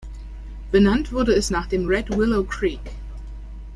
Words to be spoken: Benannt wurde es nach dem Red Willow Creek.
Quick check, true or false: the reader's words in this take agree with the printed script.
true